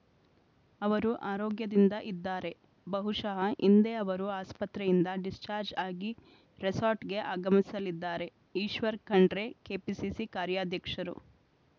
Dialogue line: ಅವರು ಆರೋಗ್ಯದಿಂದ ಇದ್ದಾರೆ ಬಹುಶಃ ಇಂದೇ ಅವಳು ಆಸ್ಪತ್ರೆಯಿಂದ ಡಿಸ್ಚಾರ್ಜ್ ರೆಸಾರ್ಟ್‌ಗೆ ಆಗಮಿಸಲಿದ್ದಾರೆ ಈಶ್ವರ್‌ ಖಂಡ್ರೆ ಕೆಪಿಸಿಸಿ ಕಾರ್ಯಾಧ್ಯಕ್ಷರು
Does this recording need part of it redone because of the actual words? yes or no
yes